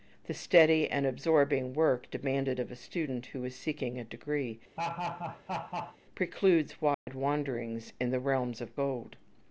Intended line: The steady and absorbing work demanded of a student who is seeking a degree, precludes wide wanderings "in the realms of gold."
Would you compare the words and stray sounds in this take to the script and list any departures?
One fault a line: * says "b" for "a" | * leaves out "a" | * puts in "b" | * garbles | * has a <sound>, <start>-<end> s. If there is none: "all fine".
* has a laugh, 4.8-6.0 s
* has a dropout, 6.9-7.1 s